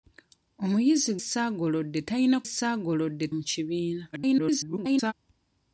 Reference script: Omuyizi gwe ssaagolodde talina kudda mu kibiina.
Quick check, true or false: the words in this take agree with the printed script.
false